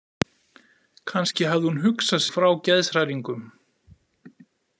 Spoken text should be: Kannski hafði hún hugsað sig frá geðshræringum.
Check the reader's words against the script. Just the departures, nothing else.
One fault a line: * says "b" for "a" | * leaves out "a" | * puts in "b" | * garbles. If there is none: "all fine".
* leaves out "sig"